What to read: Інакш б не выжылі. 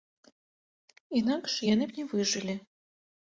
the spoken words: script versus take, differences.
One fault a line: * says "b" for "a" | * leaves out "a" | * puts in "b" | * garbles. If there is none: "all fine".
* puts in "яны"